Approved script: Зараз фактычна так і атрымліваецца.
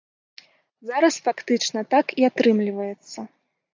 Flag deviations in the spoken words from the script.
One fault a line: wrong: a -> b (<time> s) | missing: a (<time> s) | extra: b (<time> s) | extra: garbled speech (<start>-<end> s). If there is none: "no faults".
no faults